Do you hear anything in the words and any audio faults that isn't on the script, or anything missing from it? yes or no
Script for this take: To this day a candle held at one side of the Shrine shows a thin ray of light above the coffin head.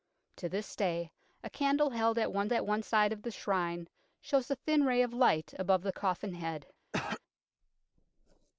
yes